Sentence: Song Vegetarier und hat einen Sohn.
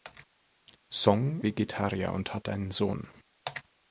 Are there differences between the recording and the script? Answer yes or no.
no